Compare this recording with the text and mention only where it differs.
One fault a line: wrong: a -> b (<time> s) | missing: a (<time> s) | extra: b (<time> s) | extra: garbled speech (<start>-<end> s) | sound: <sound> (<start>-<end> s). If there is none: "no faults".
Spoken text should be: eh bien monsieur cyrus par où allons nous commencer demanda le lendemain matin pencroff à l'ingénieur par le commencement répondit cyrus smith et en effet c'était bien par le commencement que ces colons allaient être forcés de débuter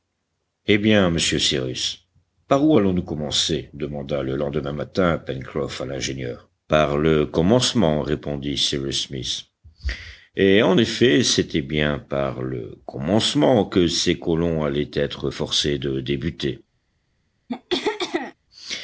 sound: throat clearing (17.5-18.3 s)